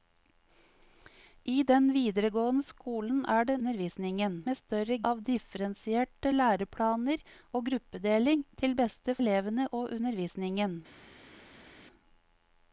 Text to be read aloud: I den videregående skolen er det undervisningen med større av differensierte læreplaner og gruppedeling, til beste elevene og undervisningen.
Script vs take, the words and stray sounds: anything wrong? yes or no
no